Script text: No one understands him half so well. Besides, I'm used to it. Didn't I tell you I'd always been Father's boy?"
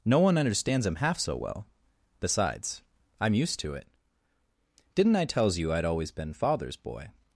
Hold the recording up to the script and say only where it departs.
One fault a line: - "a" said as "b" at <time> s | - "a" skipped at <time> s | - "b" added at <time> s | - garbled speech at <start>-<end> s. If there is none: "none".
- "tell" said as "tells" at 5.2 s